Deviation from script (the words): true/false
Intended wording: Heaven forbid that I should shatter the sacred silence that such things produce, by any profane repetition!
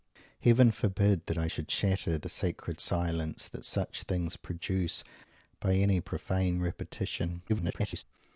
true